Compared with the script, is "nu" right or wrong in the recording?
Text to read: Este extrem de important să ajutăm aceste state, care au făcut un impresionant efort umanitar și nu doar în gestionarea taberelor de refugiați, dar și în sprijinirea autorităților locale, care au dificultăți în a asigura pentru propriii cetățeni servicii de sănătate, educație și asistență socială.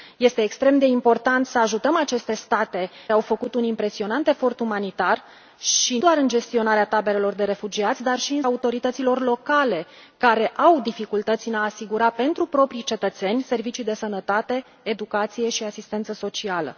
wrong